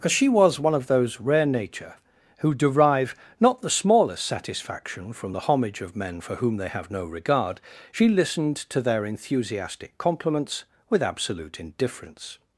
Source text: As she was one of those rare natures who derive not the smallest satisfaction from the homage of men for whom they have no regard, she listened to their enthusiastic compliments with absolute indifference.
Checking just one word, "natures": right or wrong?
wrong